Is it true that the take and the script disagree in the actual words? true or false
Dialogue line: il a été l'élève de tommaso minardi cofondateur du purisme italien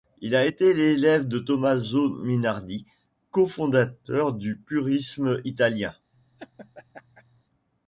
false